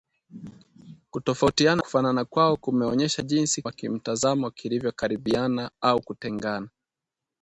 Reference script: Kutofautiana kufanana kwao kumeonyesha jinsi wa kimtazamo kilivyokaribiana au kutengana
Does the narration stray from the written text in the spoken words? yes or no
no